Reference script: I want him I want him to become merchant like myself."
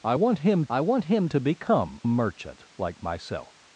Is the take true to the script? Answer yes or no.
yes